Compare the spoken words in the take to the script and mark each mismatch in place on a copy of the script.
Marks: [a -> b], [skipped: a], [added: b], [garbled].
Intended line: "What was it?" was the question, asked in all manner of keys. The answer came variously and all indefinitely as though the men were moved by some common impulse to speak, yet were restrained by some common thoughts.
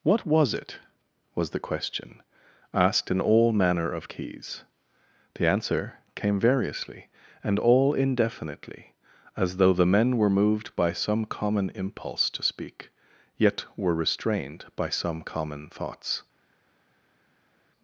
"What was it?" was the question, asked in all manner of keys. The answer came variously and all indefinitely as though the men were moved by some common impulse to speak, yet were restrained by some common thoughts.